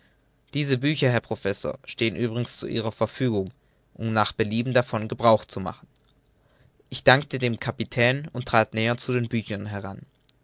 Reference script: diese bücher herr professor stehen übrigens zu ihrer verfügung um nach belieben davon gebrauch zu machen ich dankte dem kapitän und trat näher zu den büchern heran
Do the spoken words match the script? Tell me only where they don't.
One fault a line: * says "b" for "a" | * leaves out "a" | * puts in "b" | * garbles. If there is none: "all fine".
all fine